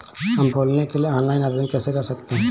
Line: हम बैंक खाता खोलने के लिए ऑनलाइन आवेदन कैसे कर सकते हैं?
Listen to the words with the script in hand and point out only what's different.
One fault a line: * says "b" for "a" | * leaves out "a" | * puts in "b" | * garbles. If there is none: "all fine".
* leaves out "बैंक खाता"